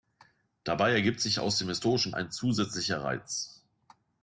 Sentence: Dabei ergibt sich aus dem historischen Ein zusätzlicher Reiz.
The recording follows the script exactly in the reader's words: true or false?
true